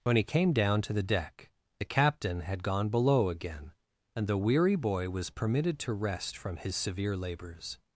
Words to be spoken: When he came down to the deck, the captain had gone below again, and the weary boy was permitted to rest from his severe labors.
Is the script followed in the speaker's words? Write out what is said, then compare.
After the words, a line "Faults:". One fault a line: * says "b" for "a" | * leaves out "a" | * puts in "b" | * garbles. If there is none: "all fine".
When he came down to the deck, the captain had gone below again, and the weary boy was permitted to rest from his severe labors.
Faults:
all fine